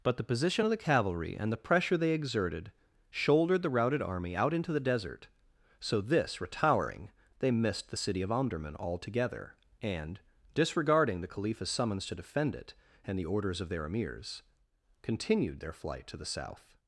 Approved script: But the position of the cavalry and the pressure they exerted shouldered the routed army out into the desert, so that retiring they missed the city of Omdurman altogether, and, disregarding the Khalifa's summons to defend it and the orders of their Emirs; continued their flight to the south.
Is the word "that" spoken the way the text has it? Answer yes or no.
no